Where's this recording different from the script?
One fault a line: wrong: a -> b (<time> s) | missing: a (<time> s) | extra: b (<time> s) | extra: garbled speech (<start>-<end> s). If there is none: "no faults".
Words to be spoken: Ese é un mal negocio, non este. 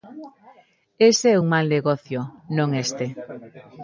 no faults